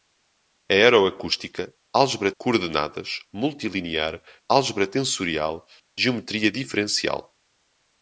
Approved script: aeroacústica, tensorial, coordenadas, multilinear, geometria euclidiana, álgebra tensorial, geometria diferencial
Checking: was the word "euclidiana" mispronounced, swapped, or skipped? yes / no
yes